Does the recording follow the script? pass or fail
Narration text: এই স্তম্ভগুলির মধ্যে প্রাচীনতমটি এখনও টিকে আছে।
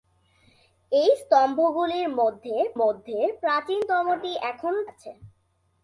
fail